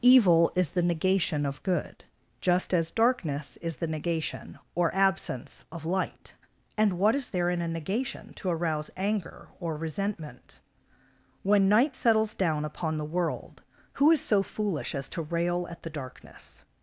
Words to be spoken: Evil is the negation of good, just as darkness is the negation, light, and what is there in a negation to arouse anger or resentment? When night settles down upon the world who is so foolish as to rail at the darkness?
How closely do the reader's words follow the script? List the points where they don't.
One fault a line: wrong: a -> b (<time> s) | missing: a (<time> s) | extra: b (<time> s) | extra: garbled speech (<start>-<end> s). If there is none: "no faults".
extra: or absence of (4.8 s)